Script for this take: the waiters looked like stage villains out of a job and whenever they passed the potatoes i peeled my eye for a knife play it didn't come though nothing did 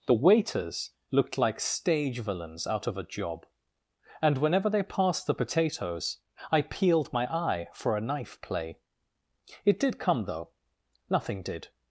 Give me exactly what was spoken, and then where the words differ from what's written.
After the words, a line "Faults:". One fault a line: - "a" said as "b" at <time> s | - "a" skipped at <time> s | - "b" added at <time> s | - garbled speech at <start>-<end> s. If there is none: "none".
the waiters looked like stage villains out of a job and whenever they passed the potatoes i peeled my eye for a knife play it did come though nothing did
Faults:
- "didn't" said as "did" at 9.8 s